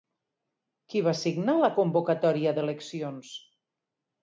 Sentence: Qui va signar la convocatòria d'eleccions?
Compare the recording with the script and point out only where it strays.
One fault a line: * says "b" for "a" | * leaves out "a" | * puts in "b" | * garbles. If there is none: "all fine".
all fine